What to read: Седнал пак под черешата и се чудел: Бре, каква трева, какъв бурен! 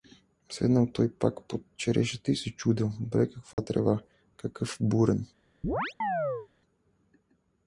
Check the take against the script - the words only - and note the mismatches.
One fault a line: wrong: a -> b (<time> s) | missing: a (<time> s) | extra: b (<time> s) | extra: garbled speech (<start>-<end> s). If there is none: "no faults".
extra: той (0.9 s)